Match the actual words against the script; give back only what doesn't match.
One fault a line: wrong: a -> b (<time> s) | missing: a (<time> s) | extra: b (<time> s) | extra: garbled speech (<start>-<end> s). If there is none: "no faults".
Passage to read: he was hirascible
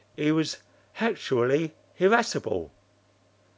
extra: hactually (0.9 s)